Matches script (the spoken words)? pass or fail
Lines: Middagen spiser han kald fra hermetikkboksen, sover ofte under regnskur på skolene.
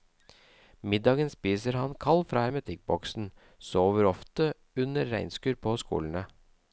pass